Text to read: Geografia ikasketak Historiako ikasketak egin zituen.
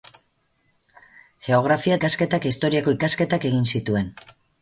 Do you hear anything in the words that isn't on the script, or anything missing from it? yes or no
no